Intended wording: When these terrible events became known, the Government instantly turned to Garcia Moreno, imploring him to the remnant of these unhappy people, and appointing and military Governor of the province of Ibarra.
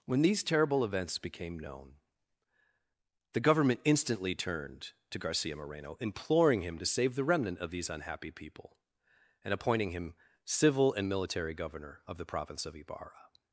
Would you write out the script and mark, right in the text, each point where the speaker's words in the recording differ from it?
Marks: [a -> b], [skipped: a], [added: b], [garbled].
When these terrible events became known, the Government instantly turned to Garcia Moreno, imploring him to [added: save] the remnant of these unhappy people, and appointing [added: him civil] and military Governor of the province of Ibarra.